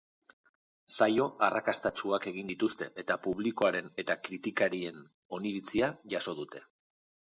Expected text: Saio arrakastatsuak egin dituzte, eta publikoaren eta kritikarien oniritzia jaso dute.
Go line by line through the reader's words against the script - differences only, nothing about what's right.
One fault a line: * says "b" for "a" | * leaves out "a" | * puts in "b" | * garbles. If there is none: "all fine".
all fine